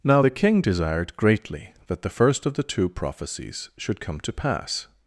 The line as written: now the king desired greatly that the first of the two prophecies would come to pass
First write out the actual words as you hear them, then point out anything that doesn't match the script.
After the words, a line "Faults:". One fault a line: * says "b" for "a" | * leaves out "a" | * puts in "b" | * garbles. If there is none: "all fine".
now the king desired greatly that the first of the two prophecies should come to pass
Faults:
* says "should" for "would"